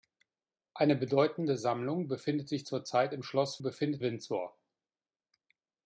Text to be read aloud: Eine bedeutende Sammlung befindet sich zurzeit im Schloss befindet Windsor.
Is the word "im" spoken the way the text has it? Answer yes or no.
yes